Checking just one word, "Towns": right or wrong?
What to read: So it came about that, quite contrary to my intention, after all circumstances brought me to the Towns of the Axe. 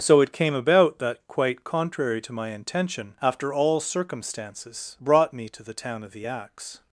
wrong